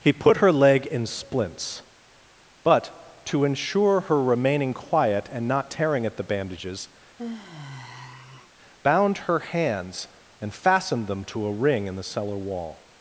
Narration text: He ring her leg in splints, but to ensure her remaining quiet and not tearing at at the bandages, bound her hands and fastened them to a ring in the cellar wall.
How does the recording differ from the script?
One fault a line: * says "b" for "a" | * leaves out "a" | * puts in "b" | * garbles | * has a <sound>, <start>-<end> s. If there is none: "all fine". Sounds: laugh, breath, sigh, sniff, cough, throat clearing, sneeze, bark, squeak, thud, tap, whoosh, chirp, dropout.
* says "put" for "ring"
* leaves out "at"
* has a sigh, 7.2-8.5 s